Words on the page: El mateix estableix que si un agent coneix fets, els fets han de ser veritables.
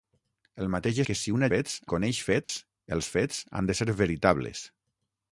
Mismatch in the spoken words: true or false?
true